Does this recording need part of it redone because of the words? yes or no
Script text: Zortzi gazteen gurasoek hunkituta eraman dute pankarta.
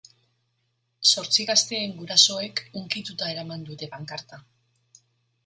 no